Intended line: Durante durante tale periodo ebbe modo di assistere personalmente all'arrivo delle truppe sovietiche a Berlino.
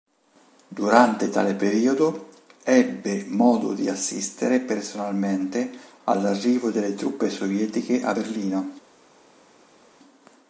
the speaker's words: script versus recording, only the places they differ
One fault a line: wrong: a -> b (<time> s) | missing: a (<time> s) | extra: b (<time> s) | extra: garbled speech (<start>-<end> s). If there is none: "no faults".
missing: durante (1.3 s)